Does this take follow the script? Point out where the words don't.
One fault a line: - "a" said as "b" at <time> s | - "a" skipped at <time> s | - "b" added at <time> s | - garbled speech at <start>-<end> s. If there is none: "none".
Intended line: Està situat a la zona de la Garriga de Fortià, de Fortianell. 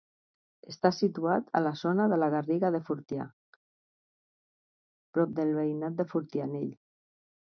- "prop del veïnat" added at 5.2 s